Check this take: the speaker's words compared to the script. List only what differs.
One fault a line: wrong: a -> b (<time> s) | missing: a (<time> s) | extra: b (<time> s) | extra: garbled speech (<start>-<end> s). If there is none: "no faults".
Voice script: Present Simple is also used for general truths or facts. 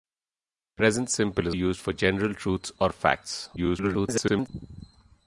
missing: also (1.6 s)
extra: garbled speech (3.6-4.5 s)